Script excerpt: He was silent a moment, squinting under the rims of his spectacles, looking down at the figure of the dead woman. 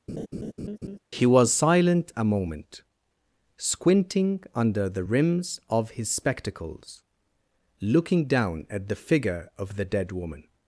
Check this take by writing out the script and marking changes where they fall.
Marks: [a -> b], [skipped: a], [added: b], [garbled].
He was silent a moment, squinting under the rims of his spectacles, looking down at the figure of the dead woman.